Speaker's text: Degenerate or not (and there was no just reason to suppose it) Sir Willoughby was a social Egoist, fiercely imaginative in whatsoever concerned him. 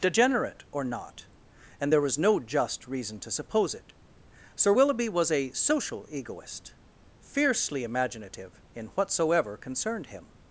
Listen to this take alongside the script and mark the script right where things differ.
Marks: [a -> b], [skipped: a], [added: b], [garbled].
Degenerate or not (and there was no just reason to suppose it) Sir Willoughby was a social Egoist, fiercely imaginative in whatsoever concerned him.